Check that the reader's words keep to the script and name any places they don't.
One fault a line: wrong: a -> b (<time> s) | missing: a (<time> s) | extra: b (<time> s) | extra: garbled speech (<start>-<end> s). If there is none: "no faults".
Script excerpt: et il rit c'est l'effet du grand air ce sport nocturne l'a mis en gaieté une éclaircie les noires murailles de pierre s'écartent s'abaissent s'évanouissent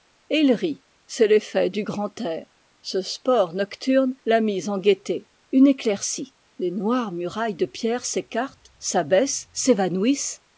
no faults